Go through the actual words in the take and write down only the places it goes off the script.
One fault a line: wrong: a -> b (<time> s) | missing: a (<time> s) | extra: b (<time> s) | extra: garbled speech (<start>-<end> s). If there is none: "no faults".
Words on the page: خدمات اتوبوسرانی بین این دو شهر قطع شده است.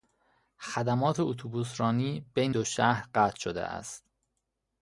missing: این (2.5 s)